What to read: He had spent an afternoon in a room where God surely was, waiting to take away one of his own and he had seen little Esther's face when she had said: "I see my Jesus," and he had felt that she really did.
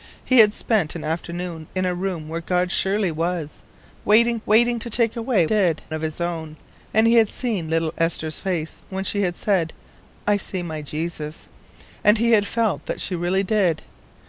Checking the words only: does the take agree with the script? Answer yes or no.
no